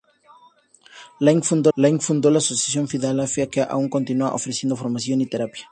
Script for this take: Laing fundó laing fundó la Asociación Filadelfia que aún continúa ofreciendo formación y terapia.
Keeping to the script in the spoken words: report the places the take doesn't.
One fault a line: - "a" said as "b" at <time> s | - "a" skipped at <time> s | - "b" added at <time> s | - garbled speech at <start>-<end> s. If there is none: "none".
none